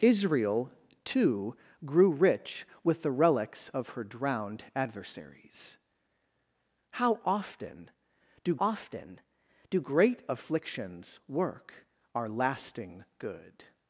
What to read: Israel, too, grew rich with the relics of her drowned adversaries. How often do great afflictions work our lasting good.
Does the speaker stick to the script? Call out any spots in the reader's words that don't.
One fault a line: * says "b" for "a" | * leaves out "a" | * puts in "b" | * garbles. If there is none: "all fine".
* puts in "often do"